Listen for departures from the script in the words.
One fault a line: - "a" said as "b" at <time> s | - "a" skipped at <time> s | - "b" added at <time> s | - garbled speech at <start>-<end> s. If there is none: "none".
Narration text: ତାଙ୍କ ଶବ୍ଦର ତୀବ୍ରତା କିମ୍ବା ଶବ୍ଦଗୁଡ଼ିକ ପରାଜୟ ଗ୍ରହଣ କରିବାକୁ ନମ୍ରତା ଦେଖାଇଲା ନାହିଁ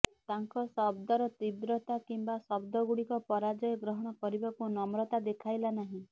none